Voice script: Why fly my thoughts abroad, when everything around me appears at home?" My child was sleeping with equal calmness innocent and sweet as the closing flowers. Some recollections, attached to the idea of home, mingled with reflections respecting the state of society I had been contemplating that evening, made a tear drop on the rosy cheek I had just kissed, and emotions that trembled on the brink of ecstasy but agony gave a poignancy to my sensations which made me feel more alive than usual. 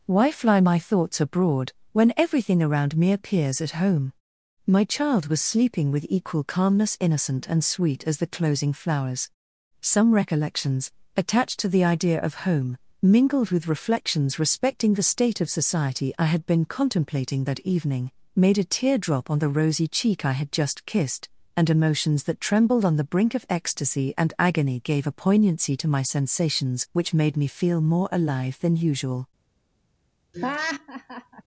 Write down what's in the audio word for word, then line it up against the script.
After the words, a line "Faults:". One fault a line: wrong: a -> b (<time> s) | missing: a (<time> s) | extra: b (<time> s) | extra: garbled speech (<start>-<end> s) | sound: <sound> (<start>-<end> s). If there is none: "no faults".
Why fly my thoughts abroad, when everything around me appears at home?" My child was sleeping with equal calmness innocent and sweet as the closing flowers. Some recollections, attached to the idea of home, mingled with reflections respecting the state of society I had been contemplating that evening, made a tear drop on the rosy cheek I had just kissed, and emotions that trembled on the brink of ecstasy and agony gave a poignancy to my sensations which made me feel more alive than usual.
Faults:
wrong: but -> and (24.2 s)
sound: laugh (30.3-31.4 s)